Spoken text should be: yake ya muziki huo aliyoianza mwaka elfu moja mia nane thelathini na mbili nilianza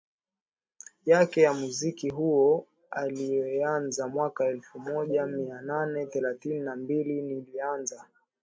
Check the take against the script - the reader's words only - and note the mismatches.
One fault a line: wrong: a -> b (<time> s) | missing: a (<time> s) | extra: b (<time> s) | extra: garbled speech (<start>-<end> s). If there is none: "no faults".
no faults